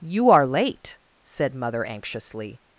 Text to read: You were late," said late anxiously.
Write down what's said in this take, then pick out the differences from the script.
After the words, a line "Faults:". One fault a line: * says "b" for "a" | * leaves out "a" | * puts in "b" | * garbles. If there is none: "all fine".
You are late," said mother anxiously.
Faults:
* says "are" for "were"
* says "mother" for "late"